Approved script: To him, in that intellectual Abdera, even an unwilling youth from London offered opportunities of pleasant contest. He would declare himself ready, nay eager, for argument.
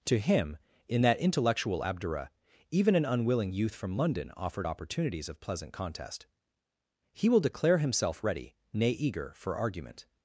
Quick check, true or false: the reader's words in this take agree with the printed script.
false